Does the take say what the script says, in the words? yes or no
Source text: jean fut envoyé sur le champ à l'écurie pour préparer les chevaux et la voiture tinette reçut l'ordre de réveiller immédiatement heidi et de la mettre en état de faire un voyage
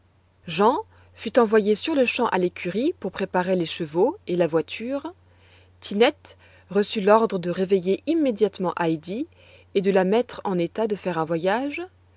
yes